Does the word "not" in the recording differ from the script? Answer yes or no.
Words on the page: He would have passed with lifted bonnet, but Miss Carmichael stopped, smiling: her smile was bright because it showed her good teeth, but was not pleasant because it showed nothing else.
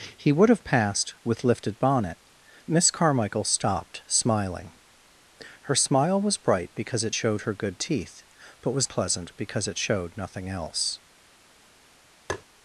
yes